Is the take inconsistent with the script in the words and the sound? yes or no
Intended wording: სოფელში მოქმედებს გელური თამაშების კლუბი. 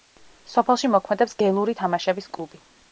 no